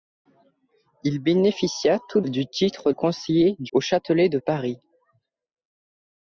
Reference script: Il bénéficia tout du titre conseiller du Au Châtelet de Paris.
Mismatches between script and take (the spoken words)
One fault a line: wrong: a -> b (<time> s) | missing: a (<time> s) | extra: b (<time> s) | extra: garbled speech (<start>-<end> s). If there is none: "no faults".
no faults